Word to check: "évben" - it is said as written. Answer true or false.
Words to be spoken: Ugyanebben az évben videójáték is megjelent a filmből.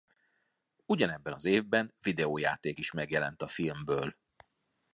true